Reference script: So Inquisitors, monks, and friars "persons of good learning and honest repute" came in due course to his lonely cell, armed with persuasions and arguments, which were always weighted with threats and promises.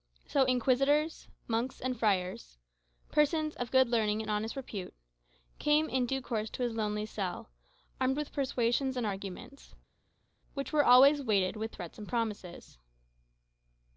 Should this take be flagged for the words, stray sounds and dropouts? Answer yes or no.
no